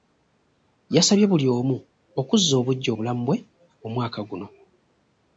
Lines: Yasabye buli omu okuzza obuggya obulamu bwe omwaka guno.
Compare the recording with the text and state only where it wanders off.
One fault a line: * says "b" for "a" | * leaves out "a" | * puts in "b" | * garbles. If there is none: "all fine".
all fine